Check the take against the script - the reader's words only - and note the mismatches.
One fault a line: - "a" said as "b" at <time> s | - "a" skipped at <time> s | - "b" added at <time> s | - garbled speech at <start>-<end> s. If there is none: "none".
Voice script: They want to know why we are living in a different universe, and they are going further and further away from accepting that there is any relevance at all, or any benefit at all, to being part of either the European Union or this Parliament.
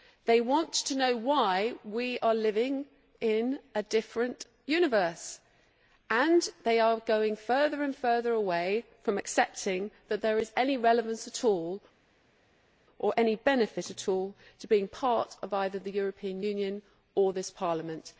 none